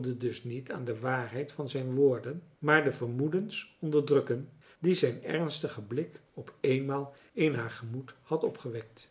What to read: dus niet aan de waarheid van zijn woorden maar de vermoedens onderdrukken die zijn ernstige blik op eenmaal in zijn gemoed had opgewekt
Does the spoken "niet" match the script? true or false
true